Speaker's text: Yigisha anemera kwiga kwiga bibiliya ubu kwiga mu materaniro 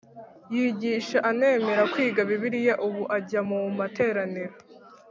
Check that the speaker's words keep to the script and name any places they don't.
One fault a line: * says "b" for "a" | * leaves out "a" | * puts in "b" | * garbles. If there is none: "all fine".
* leaves out "kwiga"
* says "ajya" for "kwiga"